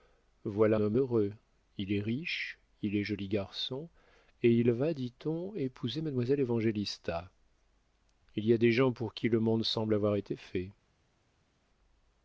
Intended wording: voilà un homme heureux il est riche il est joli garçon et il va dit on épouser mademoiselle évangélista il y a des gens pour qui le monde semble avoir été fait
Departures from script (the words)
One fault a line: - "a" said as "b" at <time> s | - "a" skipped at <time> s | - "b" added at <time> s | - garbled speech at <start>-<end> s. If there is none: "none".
- "un" skipped at 0.8 s